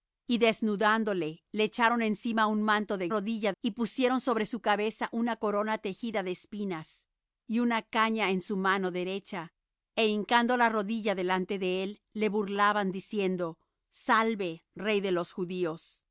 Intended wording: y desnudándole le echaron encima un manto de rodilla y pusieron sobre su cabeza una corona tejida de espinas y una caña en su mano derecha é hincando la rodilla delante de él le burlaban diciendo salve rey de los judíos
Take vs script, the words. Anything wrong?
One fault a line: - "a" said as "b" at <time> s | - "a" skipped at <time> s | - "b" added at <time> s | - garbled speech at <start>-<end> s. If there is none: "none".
none